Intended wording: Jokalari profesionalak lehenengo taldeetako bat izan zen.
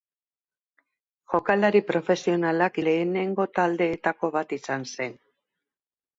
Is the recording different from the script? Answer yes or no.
no